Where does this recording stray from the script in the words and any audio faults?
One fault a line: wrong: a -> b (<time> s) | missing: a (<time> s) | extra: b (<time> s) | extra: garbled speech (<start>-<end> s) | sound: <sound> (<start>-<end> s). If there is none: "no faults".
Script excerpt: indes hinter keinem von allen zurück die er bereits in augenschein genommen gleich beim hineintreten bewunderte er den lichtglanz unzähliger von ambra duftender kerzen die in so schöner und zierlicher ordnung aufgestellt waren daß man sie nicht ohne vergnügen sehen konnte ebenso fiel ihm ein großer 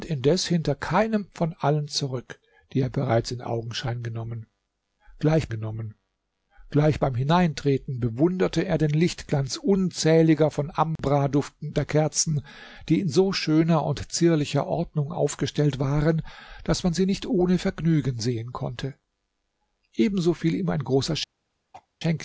extra: genommen gleich (5.5 s)
sound: dropout (11.0-11.0 s)
sound: throat clearing (21.7-21.9 s)